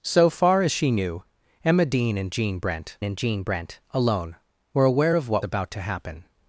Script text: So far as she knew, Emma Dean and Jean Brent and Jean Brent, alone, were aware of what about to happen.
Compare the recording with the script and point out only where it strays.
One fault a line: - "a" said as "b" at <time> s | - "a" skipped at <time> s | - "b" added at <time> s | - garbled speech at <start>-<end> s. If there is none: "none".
none